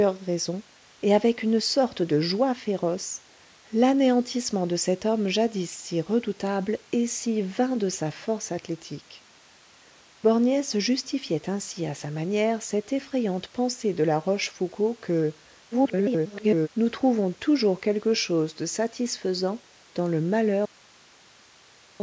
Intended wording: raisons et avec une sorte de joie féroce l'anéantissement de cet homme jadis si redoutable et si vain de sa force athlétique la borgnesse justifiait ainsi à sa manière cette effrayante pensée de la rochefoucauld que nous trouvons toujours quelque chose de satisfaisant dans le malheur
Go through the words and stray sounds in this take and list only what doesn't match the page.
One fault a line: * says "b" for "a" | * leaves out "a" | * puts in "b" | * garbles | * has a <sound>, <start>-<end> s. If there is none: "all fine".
* leaves out "la"
* garbles